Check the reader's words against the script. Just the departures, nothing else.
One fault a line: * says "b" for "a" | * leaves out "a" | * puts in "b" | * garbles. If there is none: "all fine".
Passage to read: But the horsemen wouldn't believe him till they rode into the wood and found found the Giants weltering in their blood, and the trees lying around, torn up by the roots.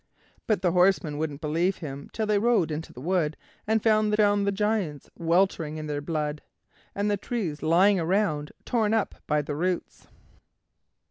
all fine